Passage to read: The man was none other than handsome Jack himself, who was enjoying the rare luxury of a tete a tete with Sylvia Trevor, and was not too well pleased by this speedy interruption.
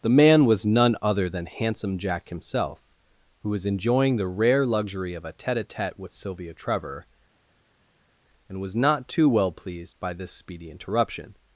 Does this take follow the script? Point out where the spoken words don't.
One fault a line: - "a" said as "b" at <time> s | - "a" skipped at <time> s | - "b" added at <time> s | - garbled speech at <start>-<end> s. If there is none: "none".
none